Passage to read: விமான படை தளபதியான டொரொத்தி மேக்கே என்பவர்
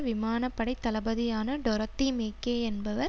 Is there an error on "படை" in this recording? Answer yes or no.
no